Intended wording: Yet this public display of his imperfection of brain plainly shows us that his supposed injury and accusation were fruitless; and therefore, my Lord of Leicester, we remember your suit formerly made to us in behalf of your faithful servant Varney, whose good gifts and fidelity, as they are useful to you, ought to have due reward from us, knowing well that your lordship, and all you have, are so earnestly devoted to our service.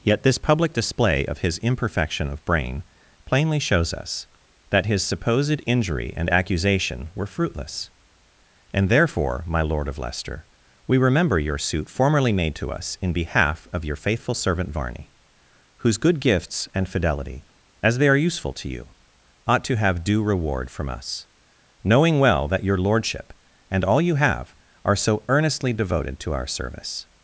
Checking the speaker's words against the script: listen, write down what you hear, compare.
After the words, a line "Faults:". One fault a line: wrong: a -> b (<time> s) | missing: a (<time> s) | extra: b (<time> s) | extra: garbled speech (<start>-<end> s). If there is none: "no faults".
Yet this public display of his imperfection of brain plainly shows us that his supposed injury and accusation were fruitless; and therefore, my Lord of Leicester, we remember your suit formerly made to us in behalf of your faithful servant Varney, whose good gifts and fidelity, as they are useful to you, ought to have due reward from us, knowing well that your lordship, and all you have, are so earnestly devoted to our service.
Faults:
no faults